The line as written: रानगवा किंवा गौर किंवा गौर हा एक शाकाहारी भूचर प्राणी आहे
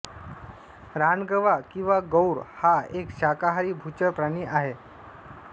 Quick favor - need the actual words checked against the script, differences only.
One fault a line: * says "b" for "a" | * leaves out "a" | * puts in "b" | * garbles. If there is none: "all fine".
* leaves out "किंवा गौर"